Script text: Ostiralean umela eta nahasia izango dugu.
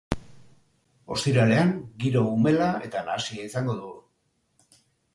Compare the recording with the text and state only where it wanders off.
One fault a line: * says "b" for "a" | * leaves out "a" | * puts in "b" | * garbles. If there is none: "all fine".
* puts in "giro"